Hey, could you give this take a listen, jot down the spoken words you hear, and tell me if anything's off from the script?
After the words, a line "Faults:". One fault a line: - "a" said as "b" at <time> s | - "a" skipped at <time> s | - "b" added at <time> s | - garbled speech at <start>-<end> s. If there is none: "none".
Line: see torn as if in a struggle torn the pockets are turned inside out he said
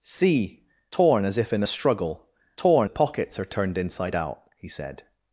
see torn as if in a struggle torn the pockets are turned inside out he said
Faults:
none